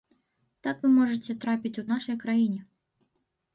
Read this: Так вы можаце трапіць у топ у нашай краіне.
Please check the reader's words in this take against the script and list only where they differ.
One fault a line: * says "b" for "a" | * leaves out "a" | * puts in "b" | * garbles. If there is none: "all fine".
* leaves out "топ"